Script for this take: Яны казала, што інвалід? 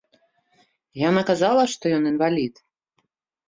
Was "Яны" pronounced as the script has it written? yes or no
no